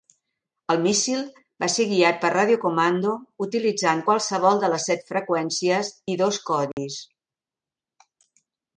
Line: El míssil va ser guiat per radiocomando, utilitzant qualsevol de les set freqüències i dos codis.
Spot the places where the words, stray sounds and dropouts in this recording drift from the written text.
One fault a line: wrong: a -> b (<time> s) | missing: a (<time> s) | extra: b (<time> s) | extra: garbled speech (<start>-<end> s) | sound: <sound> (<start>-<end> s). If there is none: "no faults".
sound: dropout (6.7-6.8 s)